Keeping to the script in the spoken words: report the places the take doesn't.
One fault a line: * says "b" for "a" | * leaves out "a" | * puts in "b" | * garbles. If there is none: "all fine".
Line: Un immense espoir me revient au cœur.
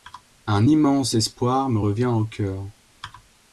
all fine